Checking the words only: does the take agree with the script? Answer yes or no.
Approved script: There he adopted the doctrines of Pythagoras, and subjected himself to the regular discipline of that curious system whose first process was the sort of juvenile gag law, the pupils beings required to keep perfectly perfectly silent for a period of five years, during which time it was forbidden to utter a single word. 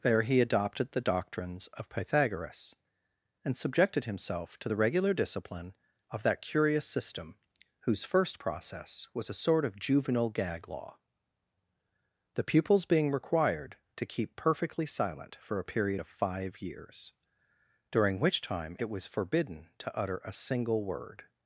no